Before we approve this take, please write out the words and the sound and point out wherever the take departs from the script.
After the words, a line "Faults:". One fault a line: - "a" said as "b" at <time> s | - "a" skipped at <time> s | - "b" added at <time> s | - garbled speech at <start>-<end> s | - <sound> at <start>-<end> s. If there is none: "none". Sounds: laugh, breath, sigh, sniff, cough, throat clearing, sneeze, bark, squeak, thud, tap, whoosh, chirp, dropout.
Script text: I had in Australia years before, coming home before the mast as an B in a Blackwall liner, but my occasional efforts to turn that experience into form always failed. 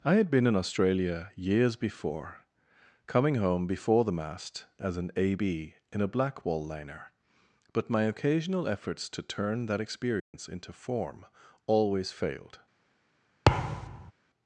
I had been in Australia years before, coming home before the mast as an A B in a Blackwall liner, but my occasional efforts to turn that experience into form always failed.
Faults:
- "been" added at 0.3 s
- "A" added at 5.2 s
- dropout at 10.2-10.3 s
- thud at 13.5-14.1 s